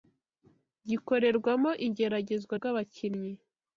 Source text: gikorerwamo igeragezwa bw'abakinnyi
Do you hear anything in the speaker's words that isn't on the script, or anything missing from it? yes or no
no